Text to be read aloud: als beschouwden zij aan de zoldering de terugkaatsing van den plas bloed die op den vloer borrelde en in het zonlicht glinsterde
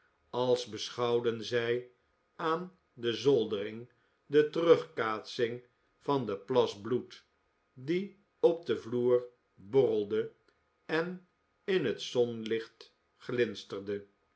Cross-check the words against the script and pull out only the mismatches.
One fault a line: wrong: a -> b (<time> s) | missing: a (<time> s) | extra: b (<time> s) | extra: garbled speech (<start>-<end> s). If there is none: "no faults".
no faults